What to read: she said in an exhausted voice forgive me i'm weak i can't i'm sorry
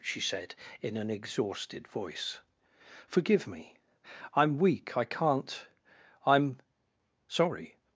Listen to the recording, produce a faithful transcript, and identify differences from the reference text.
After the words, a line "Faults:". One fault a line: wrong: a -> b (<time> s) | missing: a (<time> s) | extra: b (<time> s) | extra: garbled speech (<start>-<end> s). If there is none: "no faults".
she said in an exhausted voice forgive me i'm weak i can't i'm sorry
Faults:
no faults